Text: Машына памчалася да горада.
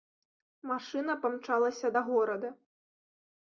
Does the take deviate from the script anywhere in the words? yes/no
no